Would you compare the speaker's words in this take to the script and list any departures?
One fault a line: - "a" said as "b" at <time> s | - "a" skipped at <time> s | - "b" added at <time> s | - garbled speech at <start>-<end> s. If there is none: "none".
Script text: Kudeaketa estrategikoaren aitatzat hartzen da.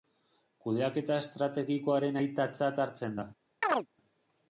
none